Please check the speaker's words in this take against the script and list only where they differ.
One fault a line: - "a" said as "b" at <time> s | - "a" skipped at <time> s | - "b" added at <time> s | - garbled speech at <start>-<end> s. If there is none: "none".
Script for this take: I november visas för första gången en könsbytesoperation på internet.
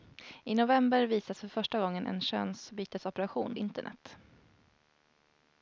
- "på" skipped at 3.6 s